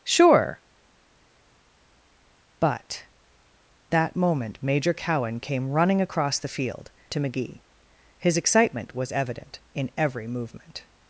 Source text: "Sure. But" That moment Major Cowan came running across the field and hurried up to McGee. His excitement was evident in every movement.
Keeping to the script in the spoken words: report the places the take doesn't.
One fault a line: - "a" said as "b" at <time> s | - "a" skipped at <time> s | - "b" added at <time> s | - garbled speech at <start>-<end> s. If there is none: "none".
- "and hurried up" skipped at 6.9 s